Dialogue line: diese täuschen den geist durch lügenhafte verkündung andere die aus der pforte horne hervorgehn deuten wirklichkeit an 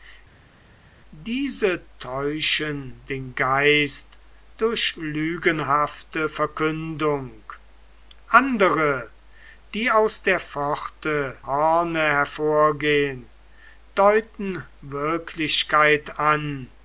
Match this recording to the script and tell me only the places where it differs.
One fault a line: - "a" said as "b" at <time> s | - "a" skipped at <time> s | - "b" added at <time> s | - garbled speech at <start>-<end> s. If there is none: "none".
none